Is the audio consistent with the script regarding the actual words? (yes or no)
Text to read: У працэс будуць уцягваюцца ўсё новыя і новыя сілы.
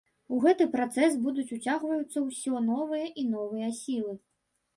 no